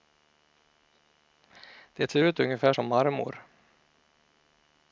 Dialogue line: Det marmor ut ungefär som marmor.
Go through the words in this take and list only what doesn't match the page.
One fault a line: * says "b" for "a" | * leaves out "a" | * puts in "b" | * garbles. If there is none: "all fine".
* says "ser" for "marmor"